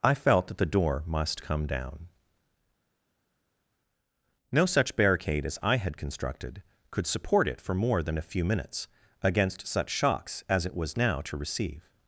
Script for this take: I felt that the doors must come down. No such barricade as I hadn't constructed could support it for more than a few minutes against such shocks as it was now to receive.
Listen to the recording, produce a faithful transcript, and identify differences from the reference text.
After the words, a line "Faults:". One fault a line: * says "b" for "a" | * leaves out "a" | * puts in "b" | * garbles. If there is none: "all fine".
I felt that the door must come down. No such barricade as I had constructed could support it for more than a few minutes against such shocks as it was now to receive.
Faults:
* says "door" for "doors"
* says "had" for "hadn't"